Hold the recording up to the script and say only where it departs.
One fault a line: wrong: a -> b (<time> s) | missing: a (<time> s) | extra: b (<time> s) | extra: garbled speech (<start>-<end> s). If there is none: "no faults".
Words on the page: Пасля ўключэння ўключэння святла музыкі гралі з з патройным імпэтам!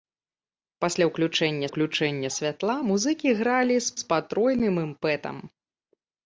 no faults